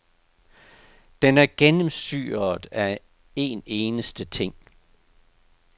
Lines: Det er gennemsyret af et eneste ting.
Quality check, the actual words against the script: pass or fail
fail